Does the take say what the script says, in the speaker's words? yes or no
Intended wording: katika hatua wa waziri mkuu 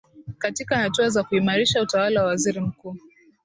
no